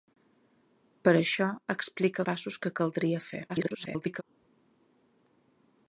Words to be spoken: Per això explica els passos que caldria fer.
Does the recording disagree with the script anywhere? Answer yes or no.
yes